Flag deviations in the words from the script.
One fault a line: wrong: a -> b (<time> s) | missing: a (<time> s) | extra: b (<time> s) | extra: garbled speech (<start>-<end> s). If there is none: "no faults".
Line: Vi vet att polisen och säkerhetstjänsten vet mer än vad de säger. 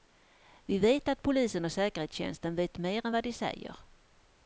no faults